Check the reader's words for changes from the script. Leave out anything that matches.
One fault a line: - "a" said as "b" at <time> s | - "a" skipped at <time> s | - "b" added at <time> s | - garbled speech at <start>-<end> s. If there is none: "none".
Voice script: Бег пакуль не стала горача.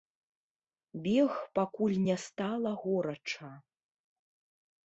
none